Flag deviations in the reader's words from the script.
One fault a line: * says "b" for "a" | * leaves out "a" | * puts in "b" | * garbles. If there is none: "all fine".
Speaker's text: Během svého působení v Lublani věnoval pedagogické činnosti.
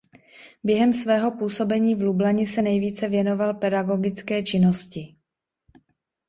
* puts in "se nejvíce"